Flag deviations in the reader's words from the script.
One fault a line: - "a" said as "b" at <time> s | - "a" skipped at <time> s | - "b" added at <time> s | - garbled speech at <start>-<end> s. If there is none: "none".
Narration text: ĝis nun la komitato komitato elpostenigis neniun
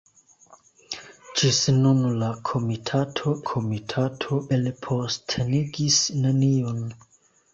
none